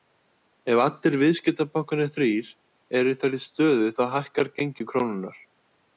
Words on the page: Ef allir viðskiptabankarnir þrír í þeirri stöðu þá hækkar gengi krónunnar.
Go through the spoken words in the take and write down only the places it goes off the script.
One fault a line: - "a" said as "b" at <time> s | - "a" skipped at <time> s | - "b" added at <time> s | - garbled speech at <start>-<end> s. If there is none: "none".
- "eru" added at 3.0 s